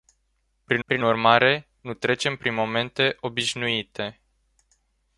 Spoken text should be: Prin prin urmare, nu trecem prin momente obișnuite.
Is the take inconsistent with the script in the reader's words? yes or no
no